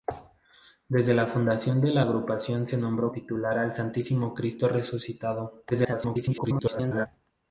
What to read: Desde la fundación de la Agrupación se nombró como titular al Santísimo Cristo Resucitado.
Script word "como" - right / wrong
wrong